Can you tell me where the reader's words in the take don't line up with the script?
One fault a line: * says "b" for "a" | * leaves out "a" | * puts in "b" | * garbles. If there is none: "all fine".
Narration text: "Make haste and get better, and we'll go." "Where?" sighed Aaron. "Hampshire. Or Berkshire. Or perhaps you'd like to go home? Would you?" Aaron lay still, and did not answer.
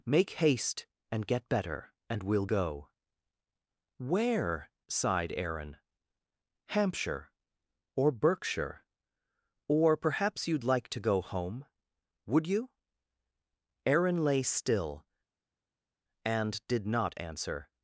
all fine